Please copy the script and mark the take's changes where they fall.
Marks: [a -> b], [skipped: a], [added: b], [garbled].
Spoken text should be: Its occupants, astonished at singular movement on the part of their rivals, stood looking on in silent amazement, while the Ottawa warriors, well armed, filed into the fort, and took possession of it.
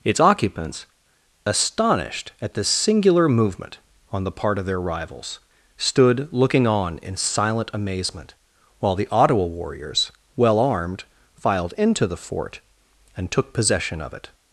Its occupants, astonished at [added: this] singular movement on the part of their rivals, stood looking on in silent amazement, while the Ottawa warriors, well armed, filed into the fort, and took possession of it.